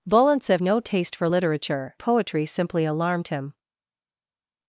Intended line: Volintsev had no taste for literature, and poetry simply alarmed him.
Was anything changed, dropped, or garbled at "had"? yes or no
yes